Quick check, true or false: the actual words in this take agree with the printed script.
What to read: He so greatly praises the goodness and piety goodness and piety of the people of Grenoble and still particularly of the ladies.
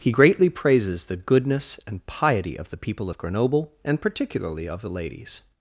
false